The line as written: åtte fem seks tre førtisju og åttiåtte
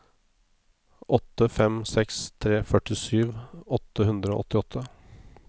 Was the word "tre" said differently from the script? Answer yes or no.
no